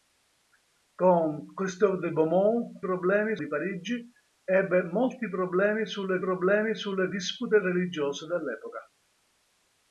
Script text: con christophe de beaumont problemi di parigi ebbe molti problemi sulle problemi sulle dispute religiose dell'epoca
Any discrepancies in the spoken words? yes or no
no